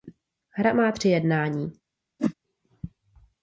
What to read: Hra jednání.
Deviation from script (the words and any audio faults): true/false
true